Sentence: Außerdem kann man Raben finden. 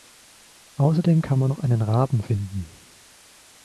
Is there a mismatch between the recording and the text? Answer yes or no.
yes